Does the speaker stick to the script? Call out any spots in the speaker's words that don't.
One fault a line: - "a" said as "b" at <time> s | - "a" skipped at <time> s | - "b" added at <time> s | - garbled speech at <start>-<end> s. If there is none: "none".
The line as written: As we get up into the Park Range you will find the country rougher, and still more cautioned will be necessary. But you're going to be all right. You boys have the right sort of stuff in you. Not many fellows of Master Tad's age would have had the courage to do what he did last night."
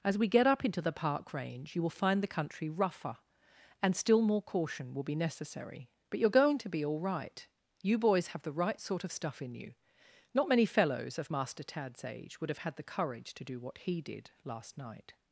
- "cautioned" said as "caution" at 4.4 s